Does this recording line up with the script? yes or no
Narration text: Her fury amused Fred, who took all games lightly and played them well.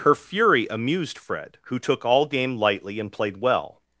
no